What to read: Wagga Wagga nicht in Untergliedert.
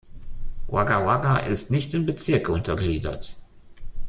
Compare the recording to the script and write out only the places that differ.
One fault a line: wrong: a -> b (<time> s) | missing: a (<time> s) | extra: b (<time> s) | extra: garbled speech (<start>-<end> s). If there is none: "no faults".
extra: ist (1.4 s)
extra: Bezirke (2.1 s)